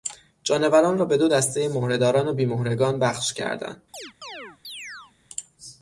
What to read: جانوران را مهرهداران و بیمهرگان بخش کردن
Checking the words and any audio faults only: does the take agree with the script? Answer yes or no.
no